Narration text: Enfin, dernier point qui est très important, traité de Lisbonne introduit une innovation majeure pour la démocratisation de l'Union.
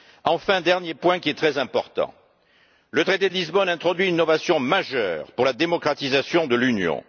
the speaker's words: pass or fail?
fail